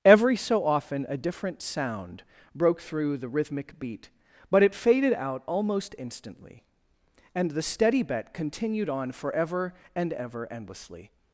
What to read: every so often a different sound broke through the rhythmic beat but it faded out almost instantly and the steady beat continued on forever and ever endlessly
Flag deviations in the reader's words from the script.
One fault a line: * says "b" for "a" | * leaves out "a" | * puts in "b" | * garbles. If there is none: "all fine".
* says "bet" for "beat"